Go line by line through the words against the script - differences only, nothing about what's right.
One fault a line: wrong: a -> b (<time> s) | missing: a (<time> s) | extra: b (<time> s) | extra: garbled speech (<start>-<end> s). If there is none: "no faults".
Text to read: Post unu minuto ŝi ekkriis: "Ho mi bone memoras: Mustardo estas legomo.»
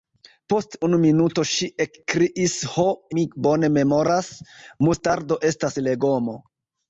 no faults